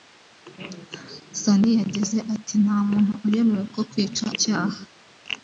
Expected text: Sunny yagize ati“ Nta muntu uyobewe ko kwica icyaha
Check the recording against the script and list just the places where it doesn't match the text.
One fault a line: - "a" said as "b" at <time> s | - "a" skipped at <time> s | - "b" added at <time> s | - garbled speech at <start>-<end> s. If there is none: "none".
none